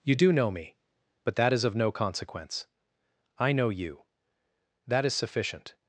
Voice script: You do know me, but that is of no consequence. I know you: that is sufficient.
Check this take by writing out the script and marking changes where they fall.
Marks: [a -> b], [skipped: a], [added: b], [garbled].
You do know me, but that is of no consequence. I know you: that is sufficient.